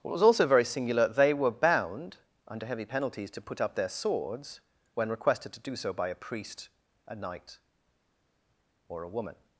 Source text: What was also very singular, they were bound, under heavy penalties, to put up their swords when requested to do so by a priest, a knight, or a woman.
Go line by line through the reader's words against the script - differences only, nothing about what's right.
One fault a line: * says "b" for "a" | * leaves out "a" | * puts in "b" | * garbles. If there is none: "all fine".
all fine